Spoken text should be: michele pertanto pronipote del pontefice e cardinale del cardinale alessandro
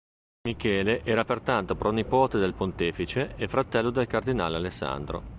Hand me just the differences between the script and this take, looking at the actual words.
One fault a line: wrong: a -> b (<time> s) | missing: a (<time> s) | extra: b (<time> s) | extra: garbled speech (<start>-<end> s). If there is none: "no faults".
extra: era (1.0 s)
wrong: cardinale -> fratello (3.5 s)